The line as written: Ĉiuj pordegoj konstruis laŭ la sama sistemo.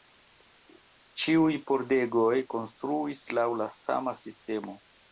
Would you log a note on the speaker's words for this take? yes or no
no